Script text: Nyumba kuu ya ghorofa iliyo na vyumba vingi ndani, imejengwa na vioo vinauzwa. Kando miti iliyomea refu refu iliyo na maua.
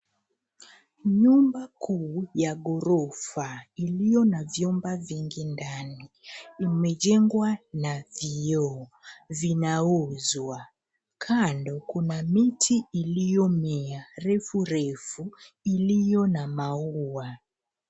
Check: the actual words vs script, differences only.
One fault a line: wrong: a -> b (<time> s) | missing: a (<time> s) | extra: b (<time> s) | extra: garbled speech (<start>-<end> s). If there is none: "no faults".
extra: kuna (11.9 s)